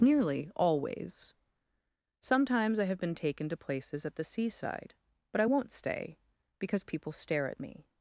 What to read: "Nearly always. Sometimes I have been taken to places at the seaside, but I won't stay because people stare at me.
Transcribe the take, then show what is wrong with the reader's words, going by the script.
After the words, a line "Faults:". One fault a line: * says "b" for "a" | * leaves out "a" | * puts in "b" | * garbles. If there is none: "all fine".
"Nearly always. Sometimes I have been taken to places at the seaside, but I won't stay because people stare at me.
Faults:
all fine